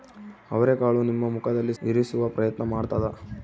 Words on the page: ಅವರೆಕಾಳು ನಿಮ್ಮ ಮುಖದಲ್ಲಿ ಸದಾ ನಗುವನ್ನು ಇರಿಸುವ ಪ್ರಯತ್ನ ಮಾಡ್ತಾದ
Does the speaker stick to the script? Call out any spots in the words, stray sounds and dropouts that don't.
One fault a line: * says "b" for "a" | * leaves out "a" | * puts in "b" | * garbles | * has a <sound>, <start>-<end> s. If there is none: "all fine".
* leaves out "ಸದಾ ನಗುವನ್ನು"